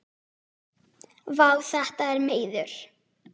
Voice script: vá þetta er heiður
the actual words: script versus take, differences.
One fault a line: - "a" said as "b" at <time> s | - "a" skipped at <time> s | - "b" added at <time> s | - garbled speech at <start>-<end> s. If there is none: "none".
none